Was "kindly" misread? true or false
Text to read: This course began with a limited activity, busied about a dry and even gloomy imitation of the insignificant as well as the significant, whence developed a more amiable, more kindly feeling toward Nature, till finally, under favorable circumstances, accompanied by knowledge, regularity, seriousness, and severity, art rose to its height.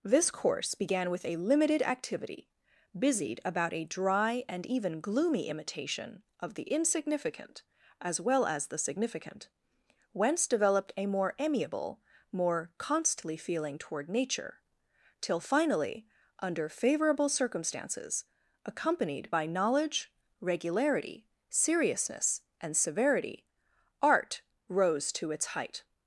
true